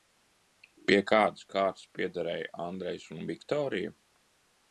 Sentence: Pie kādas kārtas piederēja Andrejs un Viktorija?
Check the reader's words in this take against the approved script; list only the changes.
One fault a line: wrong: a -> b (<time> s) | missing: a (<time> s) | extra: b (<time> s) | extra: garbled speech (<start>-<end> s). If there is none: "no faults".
no faults